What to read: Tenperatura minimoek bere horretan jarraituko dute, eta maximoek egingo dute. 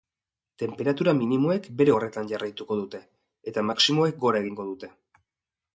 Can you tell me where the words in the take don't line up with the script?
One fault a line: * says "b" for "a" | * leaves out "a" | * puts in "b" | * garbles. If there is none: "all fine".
* puts in "gora"